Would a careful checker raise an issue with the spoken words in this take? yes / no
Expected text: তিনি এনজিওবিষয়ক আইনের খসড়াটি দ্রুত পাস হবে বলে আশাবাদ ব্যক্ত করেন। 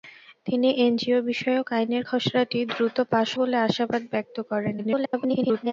yes